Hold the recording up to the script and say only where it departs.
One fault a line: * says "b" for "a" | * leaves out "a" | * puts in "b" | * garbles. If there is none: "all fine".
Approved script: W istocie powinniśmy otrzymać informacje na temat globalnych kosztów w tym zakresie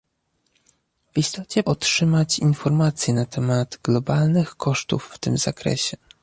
* leaves out "powinniśmy"